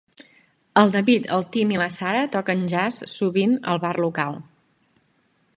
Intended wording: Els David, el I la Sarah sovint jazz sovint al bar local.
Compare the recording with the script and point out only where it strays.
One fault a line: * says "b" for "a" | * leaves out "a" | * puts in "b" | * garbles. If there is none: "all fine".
* says "El" for "Els"
* puts in "Tim"
* says "toquen" for "sovint"